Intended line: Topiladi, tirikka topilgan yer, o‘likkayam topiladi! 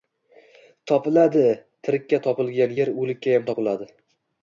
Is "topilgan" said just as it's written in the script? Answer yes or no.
yes